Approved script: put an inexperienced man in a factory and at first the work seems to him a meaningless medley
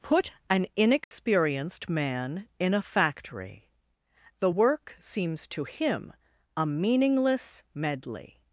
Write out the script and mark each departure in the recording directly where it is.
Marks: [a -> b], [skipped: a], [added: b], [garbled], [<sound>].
put an inexperienced [dropout] man in a factory [skipped: and at first] the work seems to him a meaningless medley